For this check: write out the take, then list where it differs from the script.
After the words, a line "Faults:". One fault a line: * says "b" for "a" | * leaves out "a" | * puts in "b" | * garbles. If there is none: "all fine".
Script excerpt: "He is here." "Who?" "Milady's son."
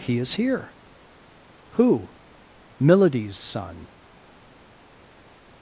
"He is here." "Who?" "Milady's son."
Faults:
all fine